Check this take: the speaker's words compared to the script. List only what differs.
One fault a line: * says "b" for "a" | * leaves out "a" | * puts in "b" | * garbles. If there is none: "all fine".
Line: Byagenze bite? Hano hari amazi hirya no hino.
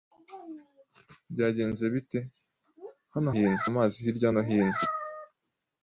* says "hino" for "hari"